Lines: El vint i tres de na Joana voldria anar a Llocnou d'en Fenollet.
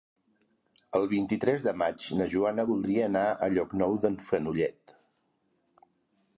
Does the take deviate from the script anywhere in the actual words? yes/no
yes